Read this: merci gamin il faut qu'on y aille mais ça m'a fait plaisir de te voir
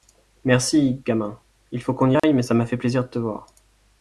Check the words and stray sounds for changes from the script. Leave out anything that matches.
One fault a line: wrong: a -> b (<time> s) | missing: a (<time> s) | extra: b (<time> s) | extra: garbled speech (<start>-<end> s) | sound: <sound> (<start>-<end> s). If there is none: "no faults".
sound: dropout (2.2-2.2 s)